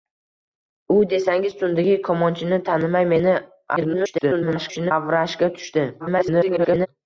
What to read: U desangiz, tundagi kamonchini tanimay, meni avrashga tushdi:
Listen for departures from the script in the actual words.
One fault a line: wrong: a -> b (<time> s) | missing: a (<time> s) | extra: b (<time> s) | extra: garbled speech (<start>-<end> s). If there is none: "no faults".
extra: garbled speech (3.8-4.9 s)
extra: garbled speech (6.0-6.9 s)